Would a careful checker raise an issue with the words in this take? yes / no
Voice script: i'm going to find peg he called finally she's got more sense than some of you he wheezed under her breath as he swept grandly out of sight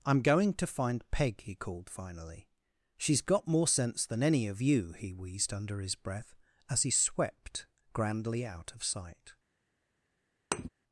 yes